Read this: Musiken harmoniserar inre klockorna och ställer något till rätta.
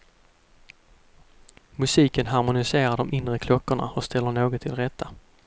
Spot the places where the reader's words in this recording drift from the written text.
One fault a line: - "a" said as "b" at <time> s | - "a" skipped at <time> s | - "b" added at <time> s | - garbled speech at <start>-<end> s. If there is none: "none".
- "de" added at 3.0 s